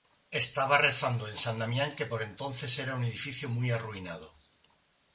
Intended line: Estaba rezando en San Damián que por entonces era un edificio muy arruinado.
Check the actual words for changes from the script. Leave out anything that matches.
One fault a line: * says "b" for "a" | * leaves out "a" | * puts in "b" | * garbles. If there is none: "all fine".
all fine